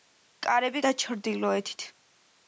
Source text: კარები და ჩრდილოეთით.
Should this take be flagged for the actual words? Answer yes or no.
no